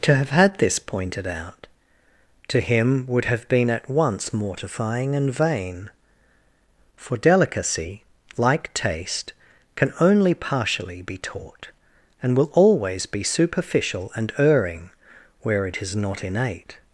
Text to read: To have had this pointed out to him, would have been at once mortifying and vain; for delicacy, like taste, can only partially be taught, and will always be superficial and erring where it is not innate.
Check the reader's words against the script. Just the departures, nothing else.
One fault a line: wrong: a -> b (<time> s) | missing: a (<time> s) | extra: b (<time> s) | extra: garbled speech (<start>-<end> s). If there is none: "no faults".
no faults